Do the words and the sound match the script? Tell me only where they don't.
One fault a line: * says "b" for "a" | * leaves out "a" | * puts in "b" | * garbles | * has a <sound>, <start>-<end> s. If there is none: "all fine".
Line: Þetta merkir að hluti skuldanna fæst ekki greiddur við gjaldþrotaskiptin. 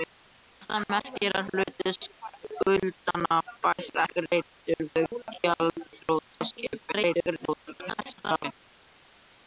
* leaves out "ekki"
* garbles